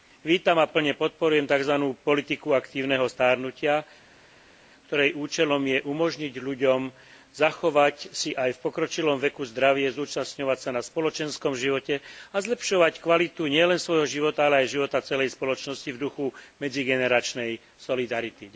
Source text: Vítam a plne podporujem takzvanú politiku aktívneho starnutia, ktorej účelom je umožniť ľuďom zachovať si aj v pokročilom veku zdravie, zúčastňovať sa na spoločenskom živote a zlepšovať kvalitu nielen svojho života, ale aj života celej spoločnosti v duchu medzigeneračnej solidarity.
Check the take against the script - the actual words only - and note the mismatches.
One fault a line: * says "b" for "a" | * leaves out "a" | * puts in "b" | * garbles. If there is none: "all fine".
all fine